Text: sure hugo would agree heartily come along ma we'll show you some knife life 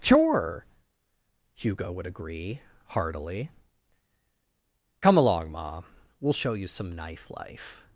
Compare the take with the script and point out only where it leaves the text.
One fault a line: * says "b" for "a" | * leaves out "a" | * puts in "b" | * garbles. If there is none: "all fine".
all fine